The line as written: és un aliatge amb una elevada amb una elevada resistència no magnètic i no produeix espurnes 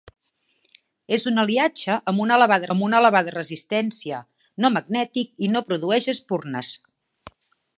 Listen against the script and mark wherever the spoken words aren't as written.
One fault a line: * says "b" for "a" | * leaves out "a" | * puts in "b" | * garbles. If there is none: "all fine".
all fine